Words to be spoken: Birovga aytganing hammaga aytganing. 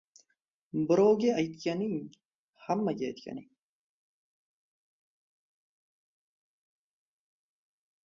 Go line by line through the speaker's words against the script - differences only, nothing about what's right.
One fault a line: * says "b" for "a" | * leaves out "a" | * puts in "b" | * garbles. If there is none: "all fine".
all fine